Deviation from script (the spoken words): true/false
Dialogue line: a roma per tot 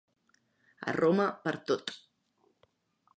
false